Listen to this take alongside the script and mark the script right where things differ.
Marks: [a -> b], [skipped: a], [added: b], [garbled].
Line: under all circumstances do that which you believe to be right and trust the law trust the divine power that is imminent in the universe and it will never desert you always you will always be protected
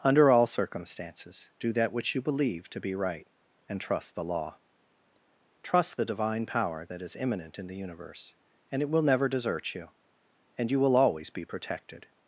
under all circumstances do that which you believe to be right and trust the law trust the divine power that is imminent in the universe and it will never desert you [always -> and] you will always be protected